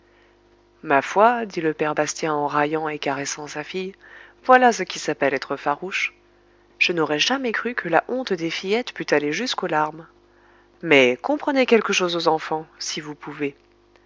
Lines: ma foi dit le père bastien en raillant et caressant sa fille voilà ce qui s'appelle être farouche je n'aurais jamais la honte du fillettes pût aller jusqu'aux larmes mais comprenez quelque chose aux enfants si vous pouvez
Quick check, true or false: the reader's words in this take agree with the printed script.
false